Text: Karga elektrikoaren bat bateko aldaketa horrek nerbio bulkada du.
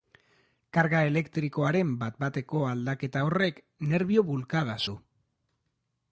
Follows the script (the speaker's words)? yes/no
yes